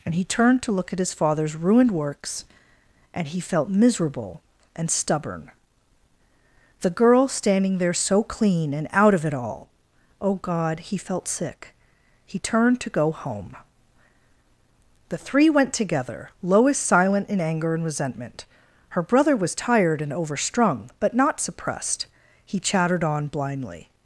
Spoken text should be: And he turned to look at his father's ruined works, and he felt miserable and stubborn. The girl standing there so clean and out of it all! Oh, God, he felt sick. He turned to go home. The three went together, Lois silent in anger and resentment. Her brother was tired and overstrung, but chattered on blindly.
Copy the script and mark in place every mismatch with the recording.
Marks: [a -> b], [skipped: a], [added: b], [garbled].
And he turned to look at his father's ruined works, and he felt miserable and stubborn. The girl standing there so clean and out of it all! Oh, God, he felt sick. He turned to go home. The three went together, Lois silent in anger and resentment. Her brother was tired and overstrung, but [added: not suppressed He] chattered on blindly.